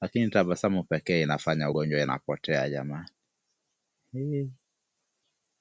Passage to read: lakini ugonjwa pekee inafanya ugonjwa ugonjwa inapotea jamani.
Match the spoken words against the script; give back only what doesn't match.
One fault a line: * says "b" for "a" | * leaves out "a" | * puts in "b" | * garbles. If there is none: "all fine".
* says "tabasamu" for "ugonjwa"
* leaves out "ugonjwa"